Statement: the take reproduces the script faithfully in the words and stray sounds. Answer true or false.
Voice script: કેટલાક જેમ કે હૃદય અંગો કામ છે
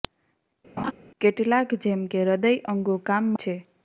false